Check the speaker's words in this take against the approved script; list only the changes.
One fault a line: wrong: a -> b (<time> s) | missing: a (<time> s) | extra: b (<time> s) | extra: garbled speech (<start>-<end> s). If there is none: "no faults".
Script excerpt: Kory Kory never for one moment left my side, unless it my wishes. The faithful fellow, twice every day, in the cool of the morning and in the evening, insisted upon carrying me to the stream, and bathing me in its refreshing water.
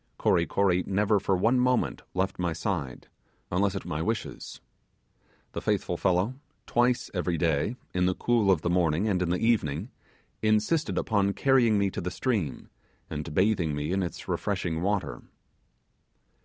no faults